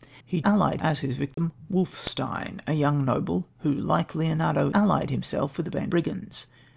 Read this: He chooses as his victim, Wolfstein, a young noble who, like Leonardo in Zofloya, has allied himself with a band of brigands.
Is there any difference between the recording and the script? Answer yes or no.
yes